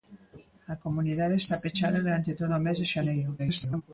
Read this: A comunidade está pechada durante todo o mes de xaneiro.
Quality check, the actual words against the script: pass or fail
fail